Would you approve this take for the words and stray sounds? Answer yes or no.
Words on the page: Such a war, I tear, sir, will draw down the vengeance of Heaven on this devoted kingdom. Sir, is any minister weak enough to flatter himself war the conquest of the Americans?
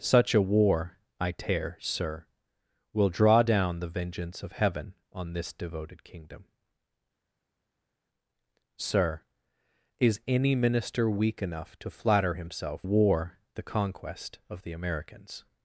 yes